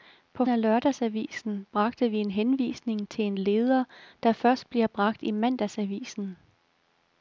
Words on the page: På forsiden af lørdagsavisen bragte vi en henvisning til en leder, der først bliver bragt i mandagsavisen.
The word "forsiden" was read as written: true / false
false